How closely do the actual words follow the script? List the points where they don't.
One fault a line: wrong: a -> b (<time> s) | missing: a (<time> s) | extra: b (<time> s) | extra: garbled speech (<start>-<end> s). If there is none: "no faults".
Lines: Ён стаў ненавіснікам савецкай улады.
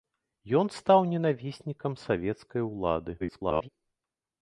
extra: garbled speech (3.2-3.7 s)